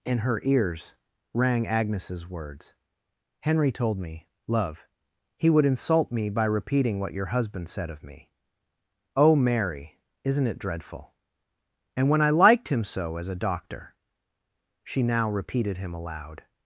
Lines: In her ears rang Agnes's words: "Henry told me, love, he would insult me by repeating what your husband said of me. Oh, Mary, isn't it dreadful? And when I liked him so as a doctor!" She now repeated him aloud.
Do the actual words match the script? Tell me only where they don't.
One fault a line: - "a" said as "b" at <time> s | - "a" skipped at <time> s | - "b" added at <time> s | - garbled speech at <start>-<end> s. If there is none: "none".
none